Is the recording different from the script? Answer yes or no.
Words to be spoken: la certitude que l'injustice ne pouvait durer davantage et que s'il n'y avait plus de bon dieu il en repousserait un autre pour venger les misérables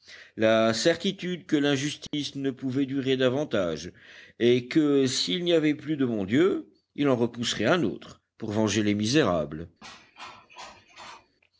no